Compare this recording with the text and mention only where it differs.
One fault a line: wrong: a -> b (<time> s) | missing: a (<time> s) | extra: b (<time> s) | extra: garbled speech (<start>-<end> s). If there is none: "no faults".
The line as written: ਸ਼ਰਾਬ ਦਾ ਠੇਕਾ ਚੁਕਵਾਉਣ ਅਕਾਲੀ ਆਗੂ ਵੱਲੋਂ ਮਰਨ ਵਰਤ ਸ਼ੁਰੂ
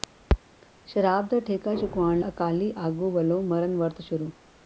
no faults